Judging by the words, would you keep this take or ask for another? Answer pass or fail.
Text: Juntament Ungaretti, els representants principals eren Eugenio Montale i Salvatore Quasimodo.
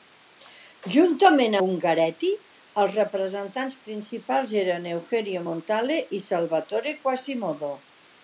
pass